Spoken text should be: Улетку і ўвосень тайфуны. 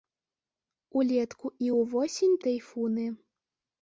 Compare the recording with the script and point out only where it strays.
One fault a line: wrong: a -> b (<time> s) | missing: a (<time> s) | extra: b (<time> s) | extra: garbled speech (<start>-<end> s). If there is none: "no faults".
no faults